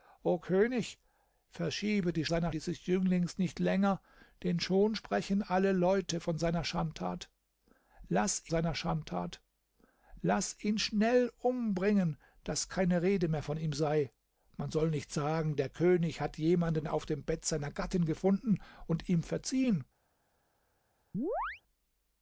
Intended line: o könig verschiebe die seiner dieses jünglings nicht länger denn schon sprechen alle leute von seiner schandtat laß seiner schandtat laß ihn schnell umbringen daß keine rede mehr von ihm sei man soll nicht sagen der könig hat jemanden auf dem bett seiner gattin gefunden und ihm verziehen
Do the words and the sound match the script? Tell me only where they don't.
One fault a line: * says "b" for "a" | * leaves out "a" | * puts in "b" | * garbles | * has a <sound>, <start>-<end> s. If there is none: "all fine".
* has a chirp, 21.1-21.6 s